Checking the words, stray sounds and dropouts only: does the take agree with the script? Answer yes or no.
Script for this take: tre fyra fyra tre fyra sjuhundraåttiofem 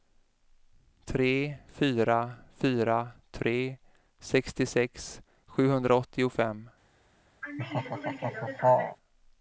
no